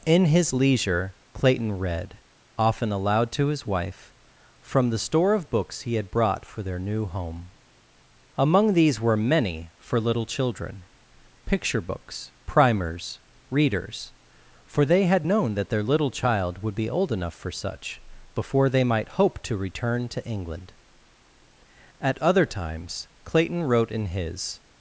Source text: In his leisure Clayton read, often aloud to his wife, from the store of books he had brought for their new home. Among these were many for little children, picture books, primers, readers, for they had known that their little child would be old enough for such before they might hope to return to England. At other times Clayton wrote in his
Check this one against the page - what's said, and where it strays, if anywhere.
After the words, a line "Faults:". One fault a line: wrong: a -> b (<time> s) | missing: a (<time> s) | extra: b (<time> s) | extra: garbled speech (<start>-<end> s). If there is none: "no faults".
In his leisure Clayton read, often aloud to his wife, from the store of books he had brought for their new home. Among these were many for little children, picture books, primers, readers, for they had known that their little child would be old enough for such before they might hope to return to England. At other times Clayton wrote in his
Faults:
no faults